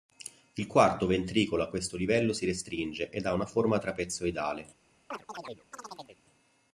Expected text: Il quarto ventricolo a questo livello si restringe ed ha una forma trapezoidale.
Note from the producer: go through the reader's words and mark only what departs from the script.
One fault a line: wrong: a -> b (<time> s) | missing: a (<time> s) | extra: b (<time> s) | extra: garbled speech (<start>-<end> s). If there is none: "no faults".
no faults